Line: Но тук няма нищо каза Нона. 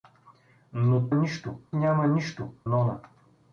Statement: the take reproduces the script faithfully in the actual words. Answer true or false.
false